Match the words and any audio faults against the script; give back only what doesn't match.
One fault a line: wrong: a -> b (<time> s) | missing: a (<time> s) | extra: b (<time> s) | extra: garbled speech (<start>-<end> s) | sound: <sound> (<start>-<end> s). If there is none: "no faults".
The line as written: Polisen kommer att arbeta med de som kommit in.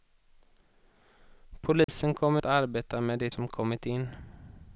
sound: dropout (1.8-1.9 s)